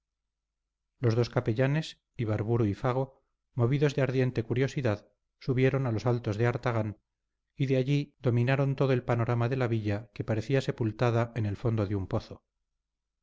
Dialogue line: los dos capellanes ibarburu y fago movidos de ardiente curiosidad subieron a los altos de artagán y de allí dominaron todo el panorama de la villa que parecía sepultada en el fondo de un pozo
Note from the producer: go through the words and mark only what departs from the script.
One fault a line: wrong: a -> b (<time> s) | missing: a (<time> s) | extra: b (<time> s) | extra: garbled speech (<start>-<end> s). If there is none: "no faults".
no faults